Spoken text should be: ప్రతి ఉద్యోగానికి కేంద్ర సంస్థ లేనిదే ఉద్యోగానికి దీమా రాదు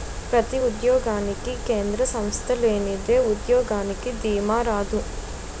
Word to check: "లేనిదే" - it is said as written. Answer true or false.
true